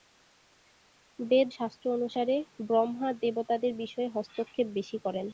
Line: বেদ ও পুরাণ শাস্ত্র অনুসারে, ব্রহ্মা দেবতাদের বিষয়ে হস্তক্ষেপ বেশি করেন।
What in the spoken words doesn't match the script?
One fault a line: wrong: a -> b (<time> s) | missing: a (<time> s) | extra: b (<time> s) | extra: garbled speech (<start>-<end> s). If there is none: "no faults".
missing: ও পুরাণ (1.5 s)